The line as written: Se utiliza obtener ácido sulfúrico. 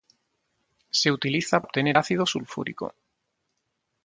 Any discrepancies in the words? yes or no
no